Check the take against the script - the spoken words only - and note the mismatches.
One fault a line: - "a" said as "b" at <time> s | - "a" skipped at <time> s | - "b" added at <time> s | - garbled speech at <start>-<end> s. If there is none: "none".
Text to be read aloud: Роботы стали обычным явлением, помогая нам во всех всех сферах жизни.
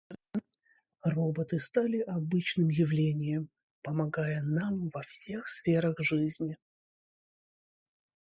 - "всех" skipped at 5.5 s